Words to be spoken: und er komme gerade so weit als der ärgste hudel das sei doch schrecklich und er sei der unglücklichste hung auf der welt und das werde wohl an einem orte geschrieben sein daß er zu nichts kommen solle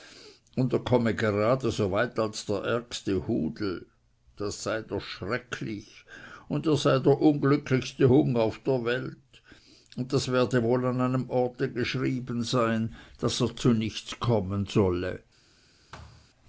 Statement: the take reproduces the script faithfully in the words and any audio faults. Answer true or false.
false